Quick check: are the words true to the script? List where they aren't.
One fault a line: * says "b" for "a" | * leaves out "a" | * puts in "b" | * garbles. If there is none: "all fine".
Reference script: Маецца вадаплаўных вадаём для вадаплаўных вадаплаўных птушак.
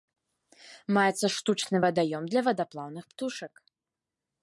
* says "штучны" for "вадаплаўных"
* leaves out "вадаплаўных"